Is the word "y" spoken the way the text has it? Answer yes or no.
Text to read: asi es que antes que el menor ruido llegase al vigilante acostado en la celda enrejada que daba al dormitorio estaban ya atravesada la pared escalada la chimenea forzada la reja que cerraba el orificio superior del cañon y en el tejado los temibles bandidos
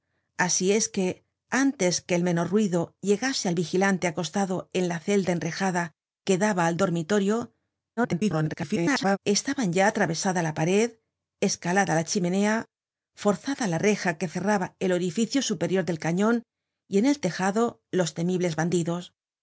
yes